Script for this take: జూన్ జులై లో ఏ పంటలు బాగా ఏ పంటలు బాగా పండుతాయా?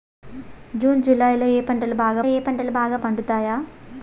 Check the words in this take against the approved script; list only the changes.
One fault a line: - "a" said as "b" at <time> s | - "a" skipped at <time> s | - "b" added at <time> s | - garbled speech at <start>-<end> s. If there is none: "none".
none